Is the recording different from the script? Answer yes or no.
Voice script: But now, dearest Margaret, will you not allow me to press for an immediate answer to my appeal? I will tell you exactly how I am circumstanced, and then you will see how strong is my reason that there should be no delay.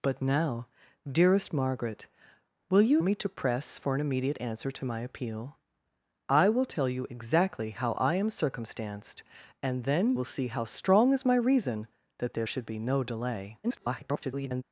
yes